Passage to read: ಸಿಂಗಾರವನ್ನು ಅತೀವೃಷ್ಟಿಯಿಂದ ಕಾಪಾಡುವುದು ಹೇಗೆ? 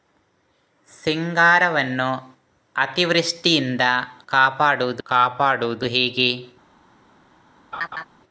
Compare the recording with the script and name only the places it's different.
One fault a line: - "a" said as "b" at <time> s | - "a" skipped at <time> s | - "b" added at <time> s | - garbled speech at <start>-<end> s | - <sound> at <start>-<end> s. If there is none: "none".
- "ಕಾಪಾಡುವುದು" added at 5.0 s
- laugh at 7.7-8.0 s